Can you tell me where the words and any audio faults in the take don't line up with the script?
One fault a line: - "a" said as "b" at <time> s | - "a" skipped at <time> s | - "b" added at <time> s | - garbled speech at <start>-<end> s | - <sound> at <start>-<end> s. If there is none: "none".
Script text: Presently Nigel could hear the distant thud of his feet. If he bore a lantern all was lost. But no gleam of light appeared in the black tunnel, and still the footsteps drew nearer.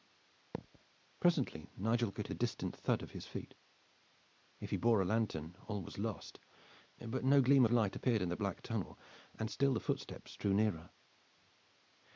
- thud at 0.5-0.8 s
- "hear" skipped at 2.3 s
- "of" skipped at 7.6 s